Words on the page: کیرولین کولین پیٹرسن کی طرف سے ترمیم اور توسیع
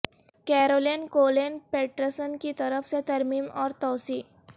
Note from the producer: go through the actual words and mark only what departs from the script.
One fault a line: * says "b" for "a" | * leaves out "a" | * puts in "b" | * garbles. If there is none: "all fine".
all fine